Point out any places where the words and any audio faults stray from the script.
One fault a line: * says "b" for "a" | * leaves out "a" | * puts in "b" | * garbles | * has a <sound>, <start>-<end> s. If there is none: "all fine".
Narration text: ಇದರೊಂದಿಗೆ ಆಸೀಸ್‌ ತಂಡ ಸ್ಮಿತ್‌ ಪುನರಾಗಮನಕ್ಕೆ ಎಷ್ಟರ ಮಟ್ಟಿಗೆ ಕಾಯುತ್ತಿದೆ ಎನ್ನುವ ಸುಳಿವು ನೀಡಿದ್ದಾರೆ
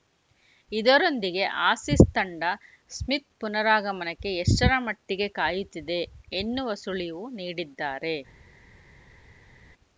all fine